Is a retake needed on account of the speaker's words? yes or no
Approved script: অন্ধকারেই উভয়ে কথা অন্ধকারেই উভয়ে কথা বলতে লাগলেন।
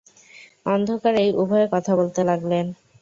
yes